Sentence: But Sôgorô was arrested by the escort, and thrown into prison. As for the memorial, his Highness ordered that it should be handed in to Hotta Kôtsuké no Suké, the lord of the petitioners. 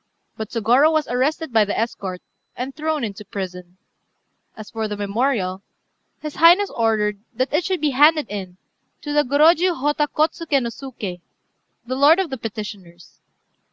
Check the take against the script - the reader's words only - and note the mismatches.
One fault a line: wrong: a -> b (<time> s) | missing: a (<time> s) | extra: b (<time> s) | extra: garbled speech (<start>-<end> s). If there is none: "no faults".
extra: the Gorôjiu (9.1 s)